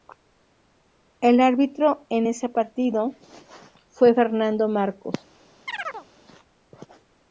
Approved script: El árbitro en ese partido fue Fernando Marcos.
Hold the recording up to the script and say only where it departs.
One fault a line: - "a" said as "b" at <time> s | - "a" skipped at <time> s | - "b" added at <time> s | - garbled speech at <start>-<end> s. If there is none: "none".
none